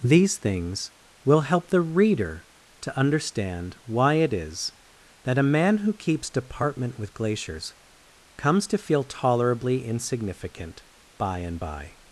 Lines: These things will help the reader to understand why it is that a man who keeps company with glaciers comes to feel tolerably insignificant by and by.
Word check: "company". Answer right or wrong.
wrong